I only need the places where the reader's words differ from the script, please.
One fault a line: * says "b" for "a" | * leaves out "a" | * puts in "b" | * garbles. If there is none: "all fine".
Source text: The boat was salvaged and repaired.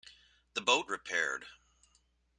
* leaves out "was salvaged and"